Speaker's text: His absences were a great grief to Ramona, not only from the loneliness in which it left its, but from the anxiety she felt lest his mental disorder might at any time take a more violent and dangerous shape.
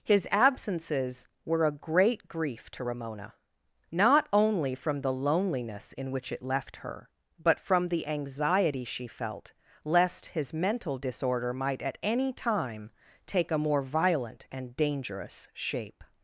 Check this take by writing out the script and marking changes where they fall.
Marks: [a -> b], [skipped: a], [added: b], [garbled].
His absences were a great grief to Ramona, not only from the loneliness in which it left [its, -> her] but from the anxiety she felt lest his mental disorder might at any time take a more violent and dangerous shape.